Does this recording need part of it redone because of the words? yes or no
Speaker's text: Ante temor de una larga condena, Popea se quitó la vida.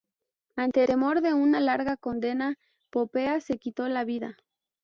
no